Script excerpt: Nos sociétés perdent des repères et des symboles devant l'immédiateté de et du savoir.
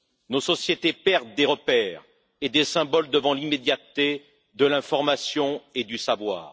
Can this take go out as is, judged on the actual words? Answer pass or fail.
fail